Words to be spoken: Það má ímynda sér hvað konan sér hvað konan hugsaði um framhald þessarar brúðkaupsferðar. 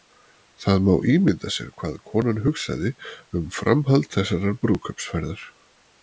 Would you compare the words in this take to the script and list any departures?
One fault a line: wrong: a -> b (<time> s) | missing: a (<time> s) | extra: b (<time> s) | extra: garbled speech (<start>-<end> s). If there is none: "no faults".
missing: sér hvað konan (2.4 s)